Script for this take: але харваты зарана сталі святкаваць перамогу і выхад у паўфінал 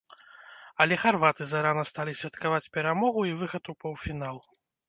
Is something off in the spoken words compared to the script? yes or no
no